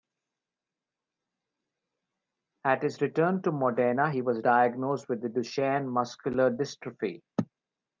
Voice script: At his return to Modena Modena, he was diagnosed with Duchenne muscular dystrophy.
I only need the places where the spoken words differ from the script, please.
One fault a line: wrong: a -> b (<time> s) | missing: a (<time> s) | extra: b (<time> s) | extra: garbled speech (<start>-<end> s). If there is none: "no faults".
missing: Modena (4.1 s)